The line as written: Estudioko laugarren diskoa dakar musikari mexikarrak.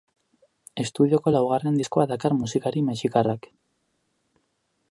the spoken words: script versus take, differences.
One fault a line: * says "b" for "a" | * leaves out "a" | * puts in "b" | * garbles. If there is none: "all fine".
all fine